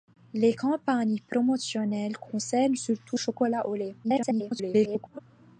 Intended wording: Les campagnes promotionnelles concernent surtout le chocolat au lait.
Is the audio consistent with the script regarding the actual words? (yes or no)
no